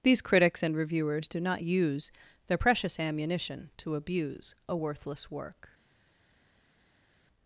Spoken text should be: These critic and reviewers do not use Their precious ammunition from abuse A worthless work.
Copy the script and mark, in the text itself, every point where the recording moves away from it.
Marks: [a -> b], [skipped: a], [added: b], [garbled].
These [critic -> critics] and reviewers do not use Their precious ammunition [from -> to] abuse A worthless work.